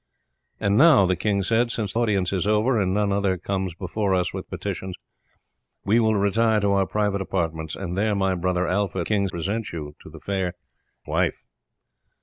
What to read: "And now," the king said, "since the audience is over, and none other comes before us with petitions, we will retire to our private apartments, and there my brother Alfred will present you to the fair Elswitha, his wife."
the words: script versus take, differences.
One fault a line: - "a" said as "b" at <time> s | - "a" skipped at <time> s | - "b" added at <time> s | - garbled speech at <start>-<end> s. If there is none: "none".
- "the" skipped at 1.9 s
- "will" said as "king" at 9.0 s
- "Elswitha his" skipped at 10.5 s